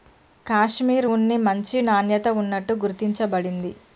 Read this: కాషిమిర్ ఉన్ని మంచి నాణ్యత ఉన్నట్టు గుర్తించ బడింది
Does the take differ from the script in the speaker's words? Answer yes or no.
no